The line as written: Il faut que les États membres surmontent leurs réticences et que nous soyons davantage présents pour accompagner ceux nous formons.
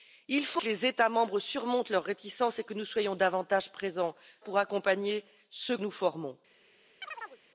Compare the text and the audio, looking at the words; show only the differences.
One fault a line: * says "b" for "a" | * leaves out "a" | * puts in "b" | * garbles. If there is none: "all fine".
all fine